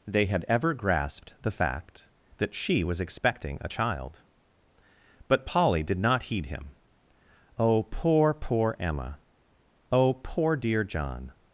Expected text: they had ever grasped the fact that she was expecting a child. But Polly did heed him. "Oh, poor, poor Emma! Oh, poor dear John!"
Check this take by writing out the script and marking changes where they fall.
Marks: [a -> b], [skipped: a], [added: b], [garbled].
they had ever grasped the fact that she was expecting a child. But Polly did [added: not] heed him. "Oh, poor, poor Emma! Oh, poor dear John!"